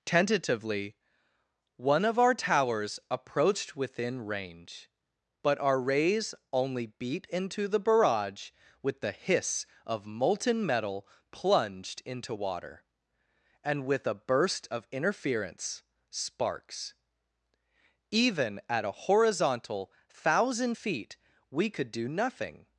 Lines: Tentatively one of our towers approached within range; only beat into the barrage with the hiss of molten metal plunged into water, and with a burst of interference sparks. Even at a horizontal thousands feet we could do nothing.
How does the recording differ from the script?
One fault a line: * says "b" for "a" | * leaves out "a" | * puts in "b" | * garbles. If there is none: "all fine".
* puts in "but our rays"
* says "thousand" for "thousands"